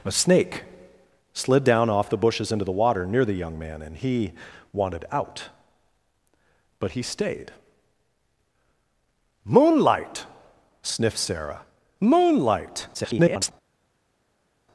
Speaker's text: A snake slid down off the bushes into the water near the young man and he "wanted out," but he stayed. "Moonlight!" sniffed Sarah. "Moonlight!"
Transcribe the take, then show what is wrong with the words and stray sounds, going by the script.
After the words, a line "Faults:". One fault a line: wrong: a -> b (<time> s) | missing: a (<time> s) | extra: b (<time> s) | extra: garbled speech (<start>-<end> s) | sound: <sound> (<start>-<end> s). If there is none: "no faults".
A snake slid down off the bushes into the water near the young man and he "wanted out," but he stayed. "Moonlight!" sniffed Sarah. "Moonlight!" [garbled]
Faults:
extra: garbled speech (12.9-13.5 s)